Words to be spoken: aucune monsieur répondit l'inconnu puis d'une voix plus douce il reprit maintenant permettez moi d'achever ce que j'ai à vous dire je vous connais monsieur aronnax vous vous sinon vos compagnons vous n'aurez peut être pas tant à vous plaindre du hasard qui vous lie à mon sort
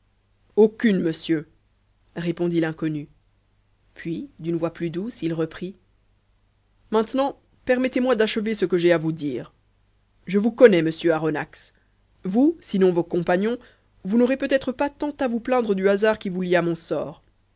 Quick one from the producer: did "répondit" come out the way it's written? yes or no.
yes